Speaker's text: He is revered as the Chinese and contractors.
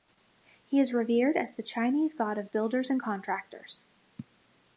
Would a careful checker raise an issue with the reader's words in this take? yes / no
yes